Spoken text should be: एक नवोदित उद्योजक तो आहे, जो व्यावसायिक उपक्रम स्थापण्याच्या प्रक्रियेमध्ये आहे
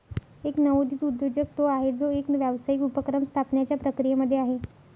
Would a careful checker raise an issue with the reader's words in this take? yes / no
yes